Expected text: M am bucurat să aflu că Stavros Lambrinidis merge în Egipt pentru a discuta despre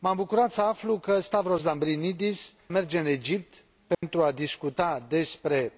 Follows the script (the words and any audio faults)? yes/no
no